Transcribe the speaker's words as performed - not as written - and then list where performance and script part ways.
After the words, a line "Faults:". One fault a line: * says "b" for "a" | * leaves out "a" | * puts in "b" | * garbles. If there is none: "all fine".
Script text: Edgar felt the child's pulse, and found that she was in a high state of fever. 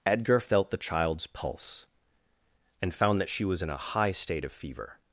Edgar felt the child's pulse, and found that she was in a high state of fever.
Faults:
all fine